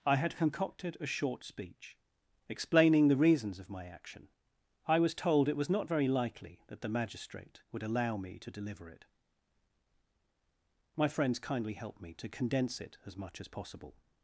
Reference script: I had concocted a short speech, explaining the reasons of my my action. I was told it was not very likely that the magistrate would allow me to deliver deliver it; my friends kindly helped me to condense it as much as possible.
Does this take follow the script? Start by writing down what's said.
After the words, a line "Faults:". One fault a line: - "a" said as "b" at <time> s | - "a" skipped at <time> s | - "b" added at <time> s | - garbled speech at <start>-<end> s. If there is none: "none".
I had concocted a short speech, explaining the reasons of my action. I was told it was not very likely that the magistrate would allow me to deliver it; my friends kindly helped me to condense it as much as possible.
Faults:
- "my" skipped at 3.9 s
- "deliver" skipped at 8.9 s